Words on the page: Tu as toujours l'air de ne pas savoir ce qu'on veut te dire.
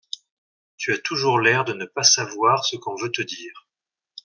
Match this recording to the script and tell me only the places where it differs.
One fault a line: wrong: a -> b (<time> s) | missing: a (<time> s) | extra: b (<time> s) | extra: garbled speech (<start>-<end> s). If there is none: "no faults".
no faults